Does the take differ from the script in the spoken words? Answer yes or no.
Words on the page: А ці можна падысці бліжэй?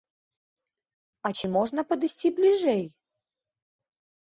no